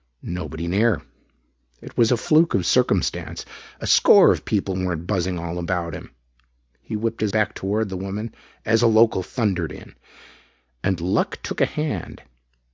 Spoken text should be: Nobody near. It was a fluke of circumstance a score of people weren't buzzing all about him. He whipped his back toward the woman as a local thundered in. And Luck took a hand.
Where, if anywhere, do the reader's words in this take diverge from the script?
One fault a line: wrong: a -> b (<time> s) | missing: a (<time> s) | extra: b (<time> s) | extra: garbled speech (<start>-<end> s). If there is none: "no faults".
no faults